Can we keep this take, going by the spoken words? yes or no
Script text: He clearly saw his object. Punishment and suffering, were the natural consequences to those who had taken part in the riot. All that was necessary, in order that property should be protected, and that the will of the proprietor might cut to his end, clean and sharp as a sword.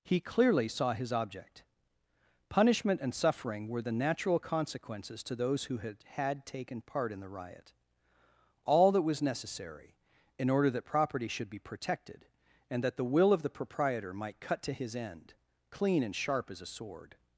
no